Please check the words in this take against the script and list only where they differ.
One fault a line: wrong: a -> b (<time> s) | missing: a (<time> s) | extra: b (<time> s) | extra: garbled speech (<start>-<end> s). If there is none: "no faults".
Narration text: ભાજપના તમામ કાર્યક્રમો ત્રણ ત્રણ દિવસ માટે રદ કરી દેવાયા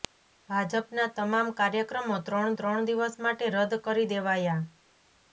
no faults